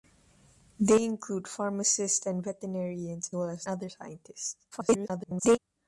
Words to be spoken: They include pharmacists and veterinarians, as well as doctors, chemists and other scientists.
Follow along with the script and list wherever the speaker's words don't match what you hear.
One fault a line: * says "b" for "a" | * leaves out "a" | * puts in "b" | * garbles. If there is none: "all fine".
* leaves out "as"
* leaves out "doctors chemists and"
* garbles